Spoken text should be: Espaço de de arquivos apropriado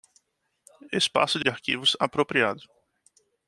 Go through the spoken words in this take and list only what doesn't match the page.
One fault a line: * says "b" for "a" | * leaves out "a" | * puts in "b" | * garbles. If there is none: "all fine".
all fine